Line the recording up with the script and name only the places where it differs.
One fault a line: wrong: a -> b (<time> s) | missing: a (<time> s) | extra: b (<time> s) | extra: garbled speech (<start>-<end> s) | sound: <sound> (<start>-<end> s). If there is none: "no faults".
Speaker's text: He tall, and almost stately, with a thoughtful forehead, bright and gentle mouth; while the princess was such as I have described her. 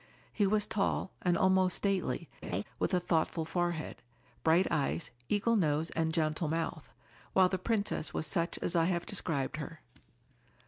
extra: was (0.5 s)
sound: laugh (2.4-2.6 s)
extra: eyes eagle nose (4.7 s)